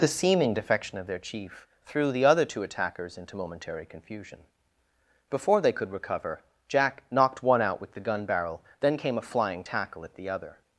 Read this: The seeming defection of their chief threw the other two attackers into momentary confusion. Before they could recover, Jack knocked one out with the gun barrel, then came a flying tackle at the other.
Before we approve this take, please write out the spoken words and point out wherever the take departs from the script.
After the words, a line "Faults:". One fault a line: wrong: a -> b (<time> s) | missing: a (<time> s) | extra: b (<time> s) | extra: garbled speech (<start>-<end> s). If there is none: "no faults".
The seeming defection of their chief threw the other two attackers into momentary confusion. Before they could recover, Jack knocked one out with the gun barrel, then came a flying tackle at the other.
Faults:
no faults